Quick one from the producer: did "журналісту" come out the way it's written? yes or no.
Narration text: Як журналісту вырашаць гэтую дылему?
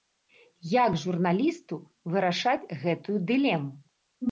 yes